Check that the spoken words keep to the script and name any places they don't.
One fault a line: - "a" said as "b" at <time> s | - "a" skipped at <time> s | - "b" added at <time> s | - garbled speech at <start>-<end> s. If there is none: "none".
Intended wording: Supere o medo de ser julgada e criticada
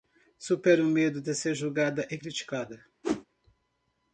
none